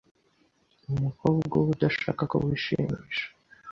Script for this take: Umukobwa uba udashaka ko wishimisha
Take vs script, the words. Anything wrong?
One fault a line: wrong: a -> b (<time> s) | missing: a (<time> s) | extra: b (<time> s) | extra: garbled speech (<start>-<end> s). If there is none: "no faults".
no faults